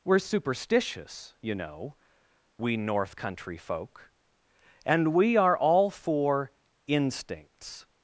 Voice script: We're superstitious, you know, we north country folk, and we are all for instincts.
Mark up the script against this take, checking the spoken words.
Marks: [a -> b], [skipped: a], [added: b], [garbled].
We're superstitious, you know, we north country folk, and we are all for instincts.